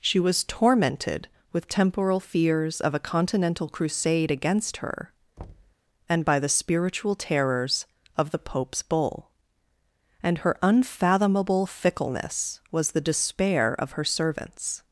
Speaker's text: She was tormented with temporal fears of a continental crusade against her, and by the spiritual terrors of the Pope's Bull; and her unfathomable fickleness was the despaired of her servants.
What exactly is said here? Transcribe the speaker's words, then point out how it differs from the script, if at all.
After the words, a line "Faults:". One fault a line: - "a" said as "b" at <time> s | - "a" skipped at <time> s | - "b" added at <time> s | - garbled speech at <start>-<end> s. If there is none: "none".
She was tormented with temporal fears of a continental crusade against her, and by the spiritual terrors of the Pope's Bull; and her unfathomable fickleness was the despair of her servants.
Faults:
- "despaired" said as "despair" at 13.0 s